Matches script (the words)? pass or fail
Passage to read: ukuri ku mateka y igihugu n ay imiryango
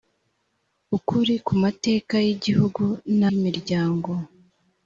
fail